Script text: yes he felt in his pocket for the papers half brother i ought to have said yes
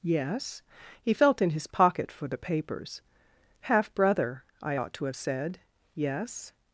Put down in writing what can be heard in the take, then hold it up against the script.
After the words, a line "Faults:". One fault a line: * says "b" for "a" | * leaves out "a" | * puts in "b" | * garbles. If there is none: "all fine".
yes he felt in his pocket for the papers half brother i ought to have said yes
Faults:
all fine